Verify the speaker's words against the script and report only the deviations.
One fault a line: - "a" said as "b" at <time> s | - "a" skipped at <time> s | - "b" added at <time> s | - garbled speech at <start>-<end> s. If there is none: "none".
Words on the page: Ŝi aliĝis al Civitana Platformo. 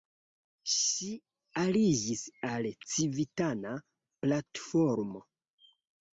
none